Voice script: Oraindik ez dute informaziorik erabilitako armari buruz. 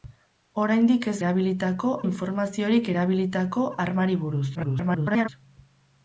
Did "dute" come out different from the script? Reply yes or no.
yes